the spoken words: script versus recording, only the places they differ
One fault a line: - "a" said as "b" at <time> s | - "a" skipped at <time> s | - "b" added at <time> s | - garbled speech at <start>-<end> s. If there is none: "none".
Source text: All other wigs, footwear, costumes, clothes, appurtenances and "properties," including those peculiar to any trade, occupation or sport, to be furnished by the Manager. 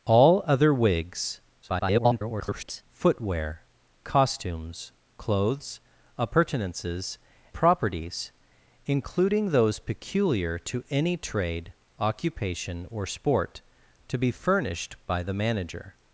- garbled speech at 1.6-2.8 s
- "and" skipped at 7.2 s